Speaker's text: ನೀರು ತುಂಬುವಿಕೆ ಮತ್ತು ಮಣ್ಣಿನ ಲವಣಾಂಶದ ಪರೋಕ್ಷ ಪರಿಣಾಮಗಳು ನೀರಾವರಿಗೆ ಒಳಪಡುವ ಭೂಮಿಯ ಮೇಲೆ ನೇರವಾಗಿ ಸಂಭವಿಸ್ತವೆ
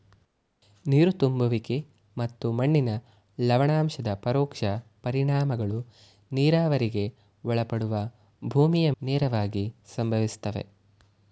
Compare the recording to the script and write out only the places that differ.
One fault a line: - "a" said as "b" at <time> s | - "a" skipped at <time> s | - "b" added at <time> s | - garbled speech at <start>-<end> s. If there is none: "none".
- "ಮೇಲೆ" skipped at 8.9 s